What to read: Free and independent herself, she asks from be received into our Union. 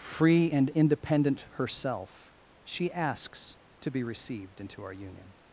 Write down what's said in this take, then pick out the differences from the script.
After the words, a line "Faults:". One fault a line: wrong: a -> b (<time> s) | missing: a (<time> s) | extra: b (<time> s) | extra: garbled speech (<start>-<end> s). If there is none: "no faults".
Free and independent herself, she asks to be received into our Union.
Faults:
wrong: from -> to (3.8 s)